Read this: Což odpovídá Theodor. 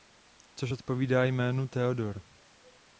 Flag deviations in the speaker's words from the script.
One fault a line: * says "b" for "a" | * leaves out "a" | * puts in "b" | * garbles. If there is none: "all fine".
* puts in "jménu"